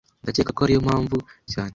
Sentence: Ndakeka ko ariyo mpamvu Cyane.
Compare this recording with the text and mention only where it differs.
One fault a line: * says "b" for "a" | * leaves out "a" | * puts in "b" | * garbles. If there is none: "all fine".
all fine